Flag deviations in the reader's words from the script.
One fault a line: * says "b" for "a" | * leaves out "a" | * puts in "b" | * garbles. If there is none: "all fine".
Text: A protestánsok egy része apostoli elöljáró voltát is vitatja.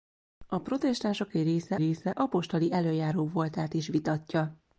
* puts in "része"